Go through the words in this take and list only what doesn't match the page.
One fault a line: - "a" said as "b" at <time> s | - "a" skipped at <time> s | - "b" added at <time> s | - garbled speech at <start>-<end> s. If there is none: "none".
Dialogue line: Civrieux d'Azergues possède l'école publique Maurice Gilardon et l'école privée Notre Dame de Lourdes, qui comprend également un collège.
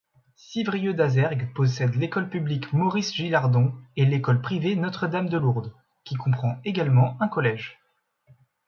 none